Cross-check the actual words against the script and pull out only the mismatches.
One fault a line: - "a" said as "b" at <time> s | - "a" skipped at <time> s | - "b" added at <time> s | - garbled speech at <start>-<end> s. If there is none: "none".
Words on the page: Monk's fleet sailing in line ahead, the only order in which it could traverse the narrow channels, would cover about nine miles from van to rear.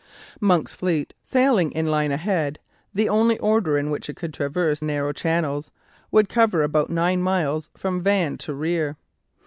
- "the" skipped at 4.8 s